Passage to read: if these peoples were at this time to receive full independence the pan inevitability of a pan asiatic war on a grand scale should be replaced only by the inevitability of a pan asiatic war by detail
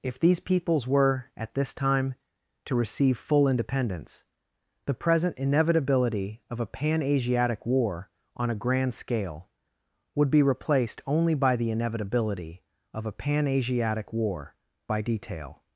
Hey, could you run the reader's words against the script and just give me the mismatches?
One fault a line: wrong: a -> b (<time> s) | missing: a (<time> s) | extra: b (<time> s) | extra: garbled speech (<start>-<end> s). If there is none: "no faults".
wrong: pan -> present (4.9 s)
wrong: should -> would (10.2 s)